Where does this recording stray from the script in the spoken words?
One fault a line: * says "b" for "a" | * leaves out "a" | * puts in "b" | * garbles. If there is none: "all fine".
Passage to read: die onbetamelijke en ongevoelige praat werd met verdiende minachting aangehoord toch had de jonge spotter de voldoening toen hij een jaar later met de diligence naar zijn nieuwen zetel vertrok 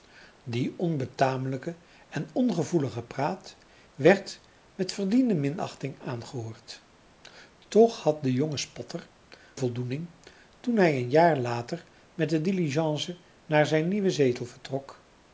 * leaves out "de"